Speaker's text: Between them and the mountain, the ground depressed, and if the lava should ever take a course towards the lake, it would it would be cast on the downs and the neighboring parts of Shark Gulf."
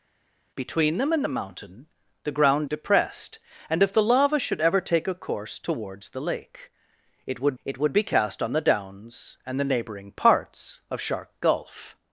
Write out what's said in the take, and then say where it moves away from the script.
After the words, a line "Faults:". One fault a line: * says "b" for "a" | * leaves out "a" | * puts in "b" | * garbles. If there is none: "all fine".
Between them and the mountain, the ground depressed, and if the lava should ever take a course towards the lake, it would it would be cast on the downs and the neighboring parts of Shark Gulf."
Faults:
all fine